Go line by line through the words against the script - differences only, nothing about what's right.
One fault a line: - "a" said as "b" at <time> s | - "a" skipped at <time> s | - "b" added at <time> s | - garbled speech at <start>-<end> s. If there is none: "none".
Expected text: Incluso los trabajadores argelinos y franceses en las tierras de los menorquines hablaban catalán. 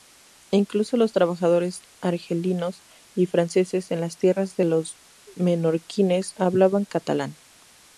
none